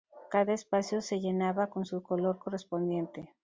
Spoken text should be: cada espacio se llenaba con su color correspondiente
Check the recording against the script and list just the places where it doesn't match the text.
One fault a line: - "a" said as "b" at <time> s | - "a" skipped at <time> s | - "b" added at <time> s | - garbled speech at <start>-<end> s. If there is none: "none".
none